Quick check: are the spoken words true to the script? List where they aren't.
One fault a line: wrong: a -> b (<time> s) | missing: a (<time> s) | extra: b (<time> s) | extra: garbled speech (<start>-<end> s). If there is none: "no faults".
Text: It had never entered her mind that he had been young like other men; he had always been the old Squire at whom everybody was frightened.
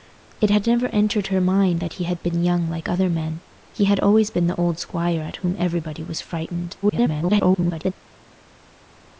extra: garbled speech (6.8-7.9 s)